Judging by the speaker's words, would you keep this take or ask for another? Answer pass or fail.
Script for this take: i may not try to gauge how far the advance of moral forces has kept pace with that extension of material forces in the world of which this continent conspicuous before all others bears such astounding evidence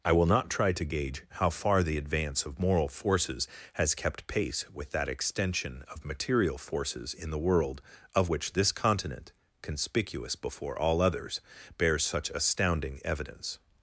fail